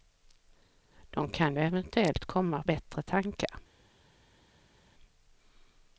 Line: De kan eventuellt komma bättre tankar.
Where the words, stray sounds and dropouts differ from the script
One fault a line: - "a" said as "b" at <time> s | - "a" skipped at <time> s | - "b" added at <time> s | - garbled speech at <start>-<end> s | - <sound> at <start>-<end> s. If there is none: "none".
none